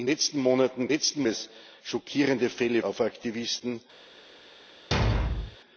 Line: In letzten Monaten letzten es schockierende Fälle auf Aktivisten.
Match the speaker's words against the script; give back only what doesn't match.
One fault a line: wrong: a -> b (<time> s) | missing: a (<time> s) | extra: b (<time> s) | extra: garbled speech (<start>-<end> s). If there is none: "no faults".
no faults